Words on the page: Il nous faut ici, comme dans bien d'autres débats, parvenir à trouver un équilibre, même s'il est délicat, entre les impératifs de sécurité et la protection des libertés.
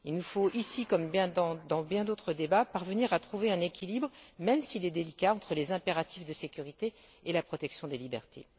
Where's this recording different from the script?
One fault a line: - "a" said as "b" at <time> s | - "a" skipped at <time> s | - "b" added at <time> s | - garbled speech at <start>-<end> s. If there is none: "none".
none